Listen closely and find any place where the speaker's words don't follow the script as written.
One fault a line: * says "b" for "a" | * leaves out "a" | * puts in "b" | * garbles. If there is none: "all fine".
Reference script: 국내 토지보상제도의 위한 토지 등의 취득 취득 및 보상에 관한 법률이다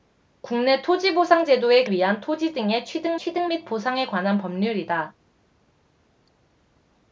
all fine